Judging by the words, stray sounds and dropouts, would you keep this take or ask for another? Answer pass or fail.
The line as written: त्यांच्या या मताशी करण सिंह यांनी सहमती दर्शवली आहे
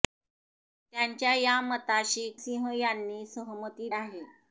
fail